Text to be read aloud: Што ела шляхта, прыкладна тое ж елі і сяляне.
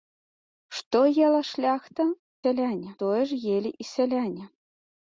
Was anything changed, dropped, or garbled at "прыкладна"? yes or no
yes